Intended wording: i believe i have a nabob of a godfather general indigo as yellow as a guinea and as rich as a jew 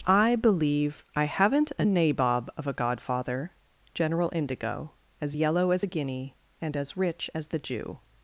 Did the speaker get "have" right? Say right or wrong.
wrong